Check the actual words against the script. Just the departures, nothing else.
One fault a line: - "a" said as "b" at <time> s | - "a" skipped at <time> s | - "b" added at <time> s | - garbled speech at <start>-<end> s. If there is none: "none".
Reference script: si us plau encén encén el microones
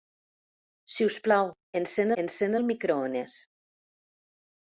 none